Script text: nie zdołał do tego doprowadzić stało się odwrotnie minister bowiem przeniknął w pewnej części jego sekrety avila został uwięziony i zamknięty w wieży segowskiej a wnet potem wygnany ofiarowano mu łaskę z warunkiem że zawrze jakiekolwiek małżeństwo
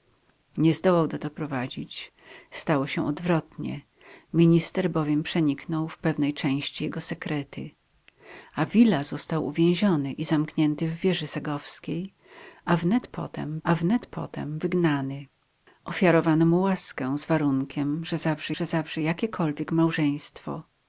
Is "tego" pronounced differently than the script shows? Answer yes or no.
yes